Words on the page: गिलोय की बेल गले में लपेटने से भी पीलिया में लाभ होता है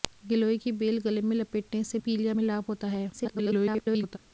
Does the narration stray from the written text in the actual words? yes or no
yes